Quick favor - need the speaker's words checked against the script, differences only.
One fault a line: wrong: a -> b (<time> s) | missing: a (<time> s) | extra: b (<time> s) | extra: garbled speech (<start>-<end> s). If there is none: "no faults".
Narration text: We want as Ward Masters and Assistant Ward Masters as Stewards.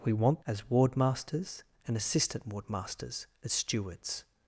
no faults